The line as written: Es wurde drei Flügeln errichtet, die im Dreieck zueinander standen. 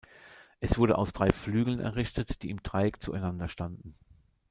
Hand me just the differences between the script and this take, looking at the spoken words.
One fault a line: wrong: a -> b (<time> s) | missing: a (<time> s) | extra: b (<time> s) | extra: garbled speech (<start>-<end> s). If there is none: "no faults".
extra: aus (1.0 s)